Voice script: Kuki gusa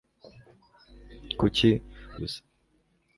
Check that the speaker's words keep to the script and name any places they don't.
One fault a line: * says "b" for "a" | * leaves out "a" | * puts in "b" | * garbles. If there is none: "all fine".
all fine